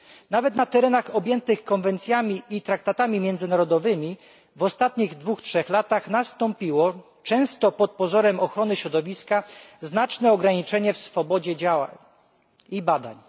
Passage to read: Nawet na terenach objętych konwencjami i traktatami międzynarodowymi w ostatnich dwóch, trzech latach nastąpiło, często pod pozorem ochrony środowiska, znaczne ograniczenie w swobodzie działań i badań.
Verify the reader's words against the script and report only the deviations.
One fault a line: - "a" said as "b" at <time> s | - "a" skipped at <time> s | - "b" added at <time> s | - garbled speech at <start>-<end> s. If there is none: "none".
none